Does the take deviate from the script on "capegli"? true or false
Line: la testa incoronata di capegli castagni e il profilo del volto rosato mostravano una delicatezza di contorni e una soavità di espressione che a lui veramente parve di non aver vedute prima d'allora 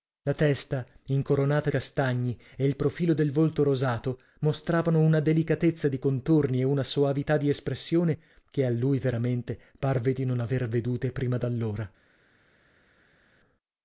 true